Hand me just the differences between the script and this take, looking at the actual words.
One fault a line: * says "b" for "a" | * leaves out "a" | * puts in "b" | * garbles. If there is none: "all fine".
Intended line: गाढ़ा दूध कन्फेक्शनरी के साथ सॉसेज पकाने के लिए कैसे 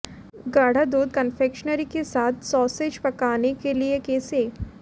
all fine